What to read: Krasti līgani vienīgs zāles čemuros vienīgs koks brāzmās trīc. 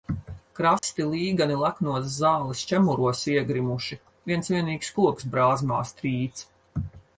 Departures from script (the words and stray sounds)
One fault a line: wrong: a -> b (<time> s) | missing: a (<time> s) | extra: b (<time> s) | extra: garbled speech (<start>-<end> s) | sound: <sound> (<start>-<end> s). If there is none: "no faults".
sound: dropout (0.8-0.8 s)
wrong: vienīgs -> leknos (1.6 s)
extra: iegrimuši viens (3.3 s)